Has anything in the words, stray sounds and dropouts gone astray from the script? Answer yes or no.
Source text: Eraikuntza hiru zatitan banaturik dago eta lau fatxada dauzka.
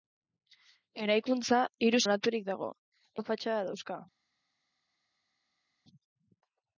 yes